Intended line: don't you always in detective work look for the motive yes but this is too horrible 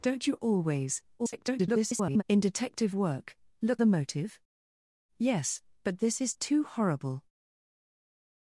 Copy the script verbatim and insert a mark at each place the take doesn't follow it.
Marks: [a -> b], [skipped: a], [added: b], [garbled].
don't you always [garbled] in detective work look [skipped: for] the motive yes but this is too horrible